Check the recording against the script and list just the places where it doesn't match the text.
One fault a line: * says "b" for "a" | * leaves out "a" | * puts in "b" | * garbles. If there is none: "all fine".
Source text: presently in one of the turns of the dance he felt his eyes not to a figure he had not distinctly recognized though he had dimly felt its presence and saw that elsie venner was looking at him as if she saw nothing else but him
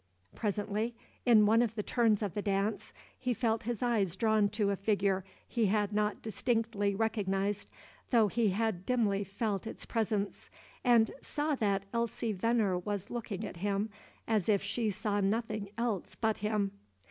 * says "drawn" for "not"